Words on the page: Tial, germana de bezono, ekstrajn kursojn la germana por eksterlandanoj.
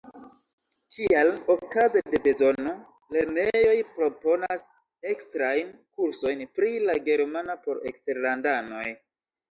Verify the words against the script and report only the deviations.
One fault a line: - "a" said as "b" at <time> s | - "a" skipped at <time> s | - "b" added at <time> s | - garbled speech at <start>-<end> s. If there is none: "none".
- "germana" said as "okaze" at 1.6 s
- "lernejoj proponas" added at 3.2 s
- "pri" added at 6.6 s